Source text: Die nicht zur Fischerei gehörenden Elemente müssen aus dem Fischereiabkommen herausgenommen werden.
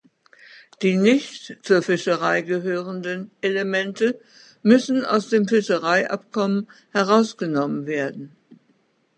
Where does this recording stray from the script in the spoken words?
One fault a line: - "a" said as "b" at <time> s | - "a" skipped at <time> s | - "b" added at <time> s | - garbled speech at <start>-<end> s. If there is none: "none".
none